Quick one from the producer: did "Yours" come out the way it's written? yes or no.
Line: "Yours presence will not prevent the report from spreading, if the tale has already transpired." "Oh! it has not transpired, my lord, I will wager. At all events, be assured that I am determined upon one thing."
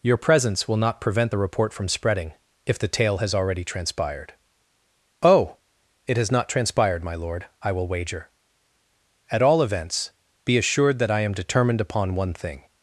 no